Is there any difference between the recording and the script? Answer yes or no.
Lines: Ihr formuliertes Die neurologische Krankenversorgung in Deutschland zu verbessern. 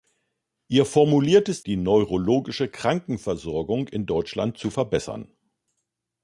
no